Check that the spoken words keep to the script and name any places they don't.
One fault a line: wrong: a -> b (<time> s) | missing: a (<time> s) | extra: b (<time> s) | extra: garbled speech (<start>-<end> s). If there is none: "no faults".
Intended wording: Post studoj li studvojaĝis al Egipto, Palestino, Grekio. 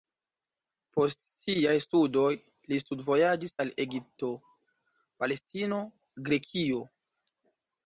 extra: siaj (1.2 s)